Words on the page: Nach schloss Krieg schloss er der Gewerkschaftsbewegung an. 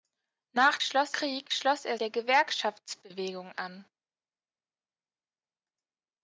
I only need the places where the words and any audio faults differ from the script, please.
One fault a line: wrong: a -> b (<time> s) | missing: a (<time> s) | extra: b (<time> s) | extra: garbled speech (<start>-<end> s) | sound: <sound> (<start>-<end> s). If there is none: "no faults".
no faults